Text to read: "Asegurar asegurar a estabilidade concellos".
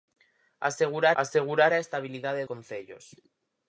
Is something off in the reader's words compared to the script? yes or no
no